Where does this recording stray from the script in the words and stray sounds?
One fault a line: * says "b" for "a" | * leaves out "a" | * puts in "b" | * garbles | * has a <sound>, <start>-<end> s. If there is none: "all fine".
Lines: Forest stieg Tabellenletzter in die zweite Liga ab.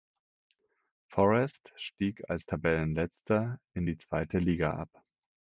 * puts in "als"